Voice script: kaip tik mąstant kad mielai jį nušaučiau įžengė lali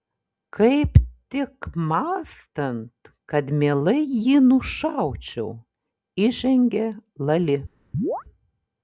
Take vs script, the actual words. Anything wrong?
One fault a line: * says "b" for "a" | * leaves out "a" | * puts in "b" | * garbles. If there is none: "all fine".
all fine